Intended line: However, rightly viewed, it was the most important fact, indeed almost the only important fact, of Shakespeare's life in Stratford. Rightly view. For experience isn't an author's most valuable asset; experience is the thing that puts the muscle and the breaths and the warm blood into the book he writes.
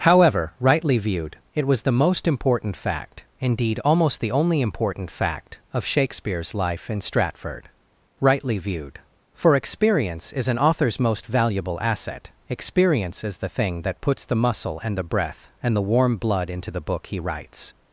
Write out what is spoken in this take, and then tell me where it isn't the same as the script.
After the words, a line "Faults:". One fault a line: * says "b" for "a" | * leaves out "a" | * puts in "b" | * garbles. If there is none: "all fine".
However, rightly viewed, it was the most important fact, indeed almost the only important fact, of Shakespeare's life in Stratford. Rightly viewed. For experience is an author's most valuable asset; experience is the thing that puts the muscle and the breath and the warm blood into the book he writes.
Faults:
* says "viewed" for "view"
* says "is" for "isn't"
* says "breath" for "breaths"